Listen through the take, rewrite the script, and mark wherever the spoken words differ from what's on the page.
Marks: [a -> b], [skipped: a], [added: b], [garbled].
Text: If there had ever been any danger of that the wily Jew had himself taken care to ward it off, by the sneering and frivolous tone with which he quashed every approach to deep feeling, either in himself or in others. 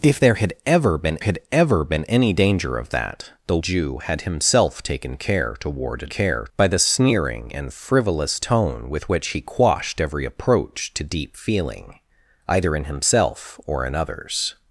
If there had ever been [added: had ever been] any danger of that the [skipped: wily] Jew had himself taken care to ward it [off, -> care] by the sneering and frivolous tone with which he quashed every approach to deep feeling, either in himself or in others.